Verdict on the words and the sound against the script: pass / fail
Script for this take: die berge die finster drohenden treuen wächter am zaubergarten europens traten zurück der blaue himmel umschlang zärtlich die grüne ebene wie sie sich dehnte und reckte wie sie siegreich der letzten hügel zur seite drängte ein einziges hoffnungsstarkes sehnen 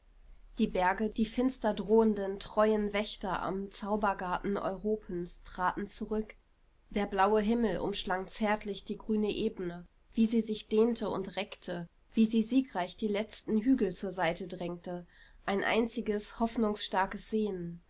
fail